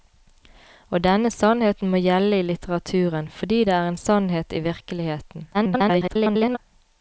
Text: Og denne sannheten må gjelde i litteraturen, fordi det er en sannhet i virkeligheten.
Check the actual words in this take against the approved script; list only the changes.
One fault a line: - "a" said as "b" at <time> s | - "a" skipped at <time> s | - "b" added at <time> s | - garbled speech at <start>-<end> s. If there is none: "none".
- garbled speech at 5.5-6.6 s